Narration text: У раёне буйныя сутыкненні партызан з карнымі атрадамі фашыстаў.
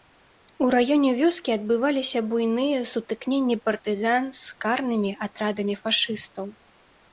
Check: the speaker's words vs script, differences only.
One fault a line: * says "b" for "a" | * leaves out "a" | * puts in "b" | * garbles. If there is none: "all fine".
* puts in "вёскі адбываліся"